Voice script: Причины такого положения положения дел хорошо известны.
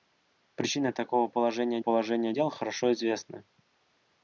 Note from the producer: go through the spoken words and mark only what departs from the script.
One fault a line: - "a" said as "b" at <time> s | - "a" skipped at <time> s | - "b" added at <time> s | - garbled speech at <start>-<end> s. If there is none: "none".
none